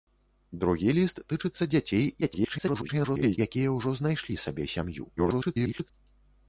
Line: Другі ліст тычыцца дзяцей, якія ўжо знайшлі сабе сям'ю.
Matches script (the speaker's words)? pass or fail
fail